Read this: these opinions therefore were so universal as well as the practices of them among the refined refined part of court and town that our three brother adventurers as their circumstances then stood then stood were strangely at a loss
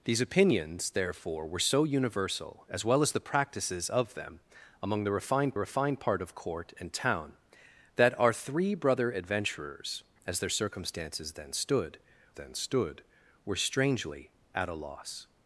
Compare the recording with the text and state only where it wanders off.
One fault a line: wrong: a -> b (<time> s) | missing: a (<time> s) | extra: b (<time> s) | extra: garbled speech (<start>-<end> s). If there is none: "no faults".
no faults